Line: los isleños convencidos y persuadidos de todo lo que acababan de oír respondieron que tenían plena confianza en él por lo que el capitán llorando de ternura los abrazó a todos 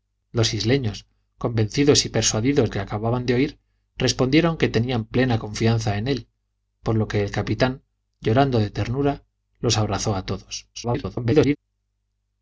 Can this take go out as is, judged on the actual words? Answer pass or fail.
fail